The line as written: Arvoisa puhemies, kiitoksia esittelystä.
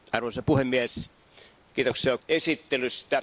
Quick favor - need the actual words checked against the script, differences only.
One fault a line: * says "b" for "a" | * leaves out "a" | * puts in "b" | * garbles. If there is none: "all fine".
all fine